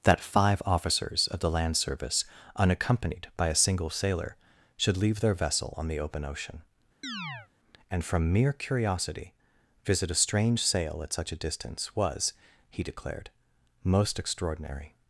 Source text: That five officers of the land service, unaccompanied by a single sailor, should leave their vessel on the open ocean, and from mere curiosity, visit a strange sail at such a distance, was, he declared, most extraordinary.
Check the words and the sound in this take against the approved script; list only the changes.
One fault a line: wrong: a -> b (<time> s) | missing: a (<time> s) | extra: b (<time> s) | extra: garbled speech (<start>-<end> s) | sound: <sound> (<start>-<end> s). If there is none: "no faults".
sound: chirp (7.0-7.5 s)